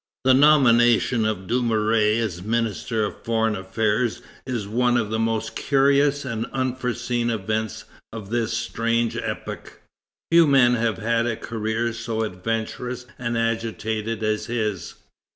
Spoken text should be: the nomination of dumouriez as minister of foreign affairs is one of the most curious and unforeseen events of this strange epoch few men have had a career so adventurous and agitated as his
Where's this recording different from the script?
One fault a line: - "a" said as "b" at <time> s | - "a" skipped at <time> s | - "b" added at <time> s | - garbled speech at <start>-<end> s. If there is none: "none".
none